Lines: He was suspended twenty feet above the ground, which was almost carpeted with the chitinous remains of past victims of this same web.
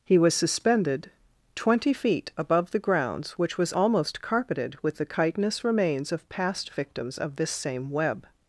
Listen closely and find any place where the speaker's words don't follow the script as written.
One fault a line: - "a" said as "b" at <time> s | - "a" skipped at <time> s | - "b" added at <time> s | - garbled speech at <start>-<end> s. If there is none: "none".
- "ground" said as "grounds" at 2.8 s